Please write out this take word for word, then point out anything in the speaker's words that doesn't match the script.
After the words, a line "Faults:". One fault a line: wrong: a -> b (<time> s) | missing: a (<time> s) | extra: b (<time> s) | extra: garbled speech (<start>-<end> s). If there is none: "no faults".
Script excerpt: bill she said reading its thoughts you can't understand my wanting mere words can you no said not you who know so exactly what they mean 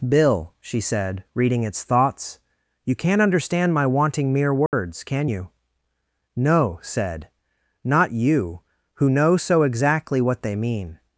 bill she said reading its thoughts you can't understand my wanting mere words can you no said not you who know so exactly what they mean
Faults:
no faults